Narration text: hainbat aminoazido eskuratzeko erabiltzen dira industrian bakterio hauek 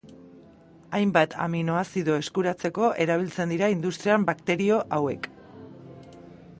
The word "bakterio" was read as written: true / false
true